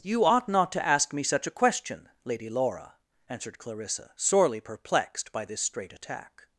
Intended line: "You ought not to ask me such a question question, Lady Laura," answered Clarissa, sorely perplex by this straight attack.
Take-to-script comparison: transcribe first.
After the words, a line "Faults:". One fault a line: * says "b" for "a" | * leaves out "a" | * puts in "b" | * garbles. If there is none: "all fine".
"You ought not to ask me such a question, Lady Laura," answered Clarissa, sorely perplexed by this straight attack.
Faults:
* leaves out "question"
* says "perplexed" for "perplex"